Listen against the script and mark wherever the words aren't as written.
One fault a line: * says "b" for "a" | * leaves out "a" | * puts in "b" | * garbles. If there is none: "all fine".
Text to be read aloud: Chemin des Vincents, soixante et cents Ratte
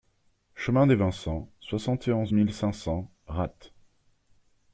* puts in "onze mille cinq"